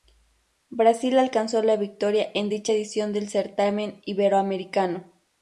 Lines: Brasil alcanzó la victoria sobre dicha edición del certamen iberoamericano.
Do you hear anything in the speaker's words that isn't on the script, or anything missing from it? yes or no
yes